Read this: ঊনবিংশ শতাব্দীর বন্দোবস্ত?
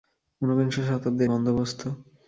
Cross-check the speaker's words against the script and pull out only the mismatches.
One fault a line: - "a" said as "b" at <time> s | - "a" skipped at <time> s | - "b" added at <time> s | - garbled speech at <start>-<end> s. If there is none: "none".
none